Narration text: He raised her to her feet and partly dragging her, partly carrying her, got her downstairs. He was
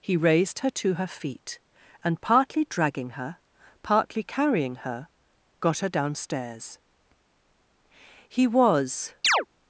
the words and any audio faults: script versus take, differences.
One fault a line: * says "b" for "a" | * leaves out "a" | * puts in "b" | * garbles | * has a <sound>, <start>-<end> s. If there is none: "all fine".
* has a chirp, 9.2-9.5 s